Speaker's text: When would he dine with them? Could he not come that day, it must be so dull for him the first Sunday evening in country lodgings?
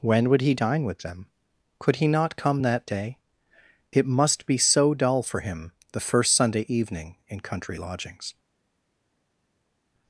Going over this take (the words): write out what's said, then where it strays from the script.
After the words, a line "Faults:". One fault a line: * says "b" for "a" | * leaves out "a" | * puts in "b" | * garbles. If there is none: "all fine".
When would he dine with them? Could he not come that day, it must be so dull for him the first Sunday evening in country lodgings?
Faults:
all fine